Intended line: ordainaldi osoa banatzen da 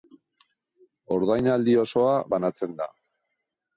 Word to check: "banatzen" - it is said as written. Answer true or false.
true